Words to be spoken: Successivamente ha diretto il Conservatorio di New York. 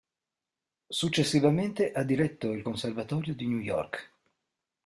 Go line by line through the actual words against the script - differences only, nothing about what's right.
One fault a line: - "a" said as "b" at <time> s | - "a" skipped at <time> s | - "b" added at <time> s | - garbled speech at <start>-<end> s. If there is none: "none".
none